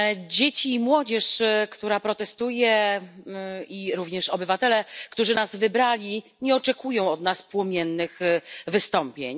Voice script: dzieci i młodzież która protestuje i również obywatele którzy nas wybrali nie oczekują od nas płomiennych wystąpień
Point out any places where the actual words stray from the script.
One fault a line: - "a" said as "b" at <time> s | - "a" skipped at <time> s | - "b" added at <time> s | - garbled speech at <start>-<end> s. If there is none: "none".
none